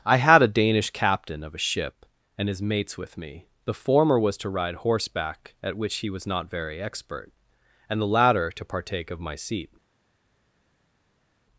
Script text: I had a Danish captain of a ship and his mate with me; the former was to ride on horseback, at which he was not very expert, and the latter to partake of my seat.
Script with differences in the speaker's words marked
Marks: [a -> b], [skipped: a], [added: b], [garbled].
I had a Danish captain of a ship and his [mate -> mates] with me; the former was to ride [skipped: on] horseback, at which he was not very expert, and the latter to partake of my seat.